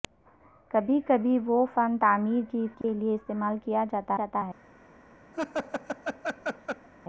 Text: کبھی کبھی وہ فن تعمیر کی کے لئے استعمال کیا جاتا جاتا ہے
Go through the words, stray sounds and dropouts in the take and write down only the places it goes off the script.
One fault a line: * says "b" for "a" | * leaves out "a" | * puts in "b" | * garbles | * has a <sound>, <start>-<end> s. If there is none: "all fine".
* has a dropout, 2.8-2.8 s
* has a laugh, 5.3-6.9 s